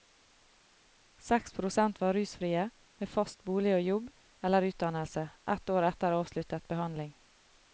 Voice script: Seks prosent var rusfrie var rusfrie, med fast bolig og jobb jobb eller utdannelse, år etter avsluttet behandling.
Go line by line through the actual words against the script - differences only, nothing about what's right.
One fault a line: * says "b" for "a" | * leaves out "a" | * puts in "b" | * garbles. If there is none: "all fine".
* leaves out "var rusfrie"
* leaves out "jobb"
* puts in "ett"